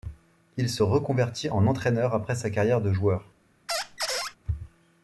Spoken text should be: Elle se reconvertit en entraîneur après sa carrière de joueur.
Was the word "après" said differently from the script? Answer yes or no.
no